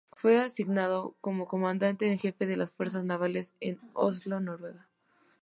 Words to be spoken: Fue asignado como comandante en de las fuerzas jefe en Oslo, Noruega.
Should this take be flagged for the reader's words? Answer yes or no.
yes